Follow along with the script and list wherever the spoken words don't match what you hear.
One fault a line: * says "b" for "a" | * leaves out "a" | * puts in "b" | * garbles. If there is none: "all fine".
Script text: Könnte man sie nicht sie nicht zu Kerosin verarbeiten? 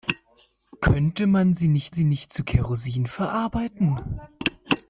all fine